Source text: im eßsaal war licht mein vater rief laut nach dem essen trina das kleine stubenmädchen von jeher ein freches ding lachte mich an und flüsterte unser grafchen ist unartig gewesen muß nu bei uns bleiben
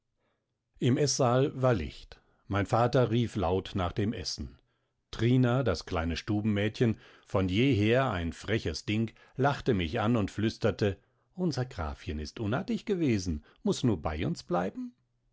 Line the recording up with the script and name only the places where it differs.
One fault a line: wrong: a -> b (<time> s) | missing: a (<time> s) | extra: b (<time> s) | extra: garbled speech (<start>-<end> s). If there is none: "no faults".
no faults